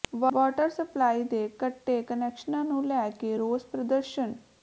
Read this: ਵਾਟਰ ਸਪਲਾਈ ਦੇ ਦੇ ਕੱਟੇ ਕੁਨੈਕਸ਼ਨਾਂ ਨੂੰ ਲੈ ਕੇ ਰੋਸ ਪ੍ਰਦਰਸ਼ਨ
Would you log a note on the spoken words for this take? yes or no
yes